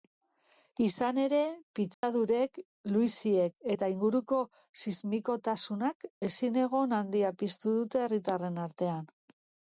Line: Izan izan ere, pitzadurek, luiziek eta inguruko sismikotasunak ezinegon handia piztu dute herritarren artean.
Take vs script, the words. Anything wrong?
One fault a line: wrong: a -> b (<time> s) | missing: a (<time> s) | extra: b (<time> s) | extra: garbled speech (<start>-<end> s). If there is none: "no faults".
missing: izan (1.2 s)